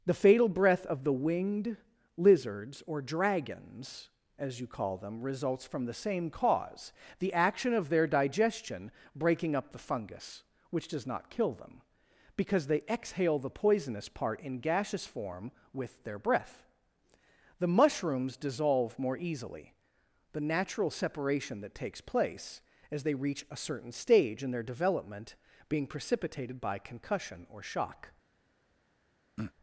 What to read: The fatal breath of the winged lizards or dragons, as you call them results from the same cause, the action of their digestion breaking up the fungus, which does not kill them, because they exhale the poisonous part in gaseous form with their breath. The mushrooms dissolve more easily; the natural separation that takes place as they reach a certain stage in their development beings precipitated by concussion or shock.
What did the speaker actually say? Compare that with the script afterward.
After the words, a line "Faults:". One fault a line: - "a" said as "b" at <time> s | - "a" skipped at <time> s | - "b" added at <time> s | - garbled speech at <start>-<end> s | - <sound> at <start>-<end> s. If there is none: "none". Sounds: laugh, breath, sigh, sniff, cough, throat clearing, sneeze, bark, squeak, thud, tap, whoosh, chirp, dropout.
The fatal breath of the winged lizards or dragons, as you call them results from the same cause, the action of their digestion breaking up the fungus, which does not kill them, because they exhale the poisonous part in gaseous form with their breath. The mushrooms dissolve more easily; the natural separation that takes place as they reach a certain stage in their development being precipitated by concussion or shock.
Faults:
- "beings" said as "being" at 25.7 s
- throat clearing at 29.4-29.5 s